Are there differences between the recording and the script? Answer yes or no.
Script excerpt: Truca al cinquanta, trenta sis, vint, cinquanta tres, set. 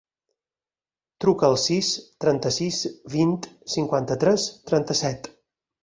yes